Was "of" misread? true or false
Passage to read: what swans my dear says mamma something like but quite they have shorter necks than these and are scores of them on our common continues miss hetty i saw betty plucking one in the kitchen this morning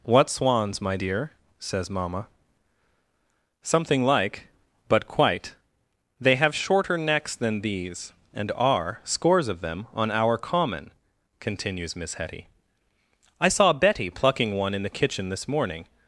false